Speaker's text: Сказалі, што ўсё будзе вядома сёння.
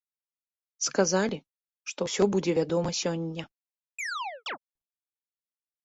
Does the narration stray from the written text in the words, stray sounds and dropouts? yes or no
yes